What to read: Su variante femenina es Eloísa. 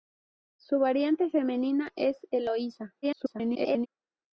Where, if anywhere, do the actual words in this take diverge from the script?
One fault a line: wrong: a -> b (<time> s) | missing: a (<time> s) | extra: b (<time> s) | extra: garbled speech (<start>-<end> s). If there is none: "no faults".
extra: garbled speech (3.0-3.9 s)